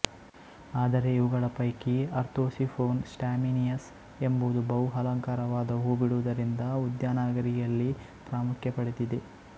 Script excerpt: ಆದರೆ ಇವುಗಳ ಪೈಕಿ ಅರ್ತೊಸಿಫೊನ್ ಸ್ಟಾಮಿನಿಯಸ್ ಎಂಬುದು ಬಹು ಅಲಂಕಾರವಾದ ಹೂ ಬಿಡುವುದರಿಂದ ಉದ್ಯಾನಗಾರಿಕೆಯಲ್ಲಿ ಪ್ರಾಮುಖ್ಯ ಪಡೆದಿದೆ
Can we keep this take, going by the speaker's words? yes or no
yes